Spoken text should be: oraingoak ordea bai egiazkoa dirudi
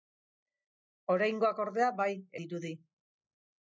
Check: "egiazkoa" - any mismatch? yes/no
yes